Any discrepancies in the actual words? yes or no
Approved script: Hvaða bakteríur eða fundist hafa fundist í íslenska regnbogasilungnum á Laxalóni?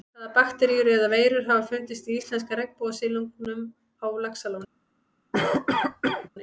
yes